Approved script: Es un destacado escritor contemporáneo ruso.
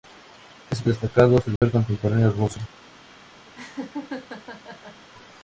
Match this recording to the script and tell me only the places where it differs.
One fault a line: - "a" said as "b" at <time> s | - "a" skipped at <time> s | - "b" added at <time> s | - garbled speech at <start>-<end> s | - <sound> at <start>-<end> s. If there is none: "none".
- "un" skipped at 0.8 s
- dropout at 1.6-1.6 s
- laugh at 3.5-5.1 s